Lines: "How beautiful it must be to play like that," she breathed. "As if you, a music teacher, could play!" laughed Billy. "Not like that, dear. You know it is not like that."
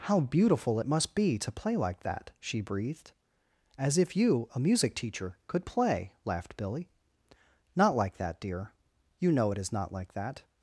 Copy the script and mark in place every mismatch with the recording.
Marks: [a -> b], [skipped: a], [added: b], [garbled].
"How beautiful it must be to play like that," she breathed. "As if you, a music teacher, could play!" laughed Billy. "Not like that, dear. You know it is not like that."